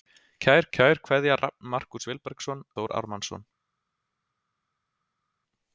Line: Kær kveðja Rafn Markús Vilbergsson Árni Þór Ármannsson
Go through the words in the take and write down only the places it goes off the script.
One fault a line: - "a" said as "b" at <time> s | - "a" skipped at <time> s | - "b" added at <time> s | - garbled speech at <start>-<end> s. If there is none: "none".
- "kær" added at 0.7 s
- "Árni" skipped at 2.6 s